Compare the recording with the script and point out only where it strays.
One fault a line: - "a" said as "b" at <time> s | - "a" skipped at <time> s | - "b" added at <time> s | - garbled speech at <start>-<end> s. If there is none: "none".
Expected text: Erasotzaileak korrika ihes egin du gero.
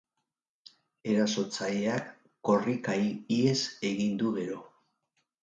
none